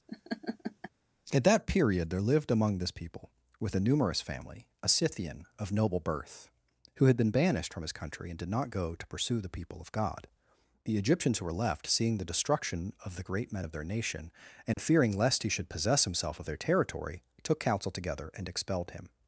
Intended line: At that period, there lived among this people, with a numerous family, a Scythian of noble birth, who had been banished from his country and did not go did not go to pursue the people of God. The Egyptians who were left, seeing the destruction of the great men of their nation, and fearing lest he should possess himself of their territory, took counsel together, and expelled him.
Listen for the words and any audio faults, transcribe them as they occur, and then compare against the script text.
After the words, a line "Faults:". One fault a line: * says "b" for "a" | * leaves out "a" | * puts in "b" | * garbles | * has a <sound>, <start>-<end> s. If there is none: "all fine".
At that period, there lived among this people, with a numerous family, a Scythian of noble birth, who had been banished from his country and did not go to pursue the people of God. The Egyptians who were left, seeing the destruction of the great men of their nation, and fearing lest he should possess himself of their territory, took counsel together, and expelled him.
Faults:
* has a laugh, 0.1-0.9 s
* leaves out "did not go"
* has a dropout, 14.7-14.8 s